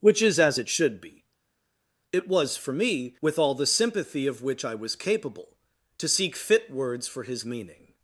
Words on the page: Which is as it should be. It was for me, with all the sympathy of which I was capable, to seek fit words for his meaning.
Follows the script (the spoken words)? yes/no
yes